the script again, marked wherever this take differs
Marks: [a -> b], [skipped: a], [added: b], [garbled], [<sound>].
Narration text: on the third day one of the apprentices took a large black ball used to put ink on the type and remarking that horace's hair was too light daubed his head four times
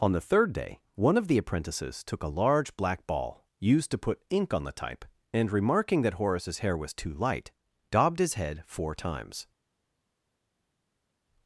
on the third day one of the apprentices took a large black ball used to put ink on the type and remarking that horace's hair was too light daubed his head four times